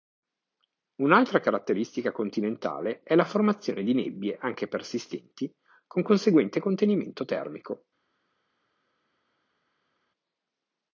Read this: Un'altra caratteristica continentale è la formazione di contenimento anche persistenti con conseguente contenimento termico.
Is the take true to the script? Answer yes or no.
no